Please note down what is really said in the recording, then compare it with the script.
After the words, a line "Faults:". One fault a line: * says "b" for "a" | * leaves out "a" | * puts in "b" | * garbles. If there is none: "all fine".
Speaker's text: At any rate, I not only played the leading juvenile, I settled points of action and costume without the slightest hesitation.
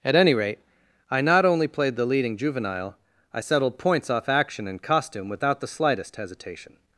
At any rate, I not only played the leading juvenile, I settled points off action and costume without the slightest hesitation.
Faults:
* says "off" for "of"